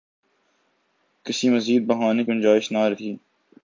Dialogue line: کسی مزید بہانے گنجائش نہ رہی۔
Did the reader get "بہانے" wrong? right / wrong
right